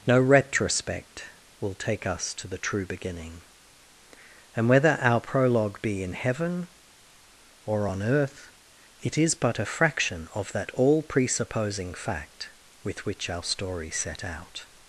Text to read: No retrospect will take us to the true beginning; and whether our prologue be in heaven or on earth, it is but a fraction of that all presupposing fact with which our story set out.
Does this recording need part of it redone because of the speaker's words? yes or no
no